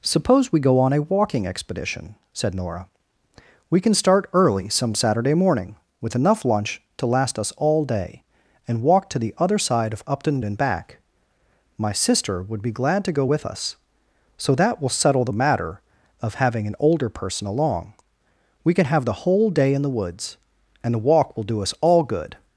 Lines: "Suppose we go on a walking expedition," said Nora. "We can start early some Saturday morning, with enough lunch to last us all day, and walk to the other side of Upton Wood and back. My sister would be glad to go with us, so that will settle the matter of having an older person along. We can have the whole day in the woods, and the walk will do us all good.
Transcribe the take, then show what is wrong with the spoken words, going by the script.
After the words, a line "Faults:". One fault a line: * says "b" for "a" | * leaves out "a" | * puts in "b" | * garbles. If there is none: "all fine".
"Suppose we go on a walking expedition," said Nora. "We can start early some Saturday morning, with enough lunch to last us all day, and walk to the other side of Upton And back. My sister would be glad to go with us, so that will settle the matter of having an older person along. We can have the whole day in the woods, and the walk will do us all good.
Faults:
* leaves out "Wood"